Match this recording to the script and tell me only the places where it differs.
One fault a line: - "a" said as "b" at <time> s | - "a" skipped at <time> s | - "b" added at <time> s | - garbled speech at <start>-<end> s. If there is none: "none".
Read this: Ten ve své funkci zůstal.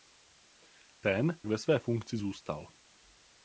none